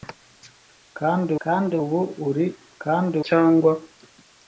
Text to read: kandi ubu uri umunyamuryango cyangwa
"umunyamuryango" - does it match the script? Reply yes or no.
no